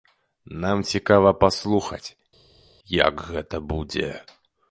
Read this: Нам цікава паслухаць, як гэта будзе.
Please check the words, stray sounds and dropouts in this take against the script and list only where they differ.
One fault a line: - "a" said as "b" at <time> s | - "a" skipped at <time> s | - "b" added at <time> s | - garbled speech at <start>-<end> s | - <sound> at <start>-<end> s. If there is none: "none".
none